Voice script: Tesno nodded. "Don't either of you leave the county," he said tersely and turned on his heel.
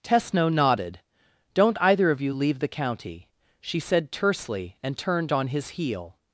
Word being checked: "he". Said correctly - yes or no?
no